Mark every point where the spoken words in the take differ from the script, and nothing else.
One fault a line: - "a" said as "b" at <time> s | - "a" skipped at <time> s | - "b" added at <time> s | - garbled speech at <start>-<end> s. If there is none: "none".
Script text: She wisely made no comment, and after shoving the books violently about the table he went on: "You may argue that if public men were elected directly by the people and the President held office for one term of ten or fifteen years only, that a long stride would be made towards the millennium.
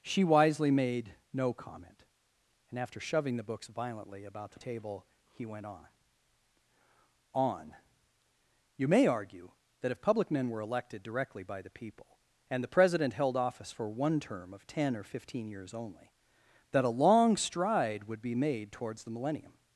- "on" added at 7.3 s